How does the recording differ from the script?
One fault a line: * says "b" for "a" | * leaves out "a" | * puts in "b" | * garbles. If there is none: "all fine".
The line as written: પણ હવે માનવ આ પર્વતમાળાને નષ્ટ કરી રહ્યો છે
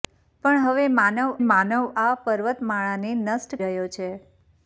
* puts in "માનવ"
* leaves out "કરી"